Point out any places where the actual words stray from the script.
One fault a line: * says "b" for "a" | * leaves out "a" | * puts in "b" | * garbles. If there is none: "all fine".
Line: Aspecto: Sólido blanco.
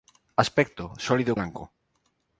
all fine